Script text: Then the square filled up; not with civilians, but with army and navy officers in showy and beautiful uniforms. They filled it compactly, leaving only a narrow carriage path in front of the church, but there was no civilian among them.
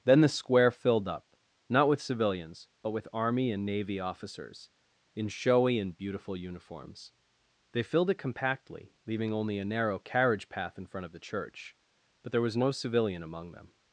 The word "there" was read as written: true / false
true